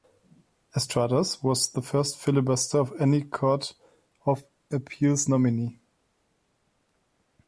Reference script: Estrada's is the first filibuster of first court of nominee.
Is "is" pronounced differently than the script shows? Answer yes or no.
yes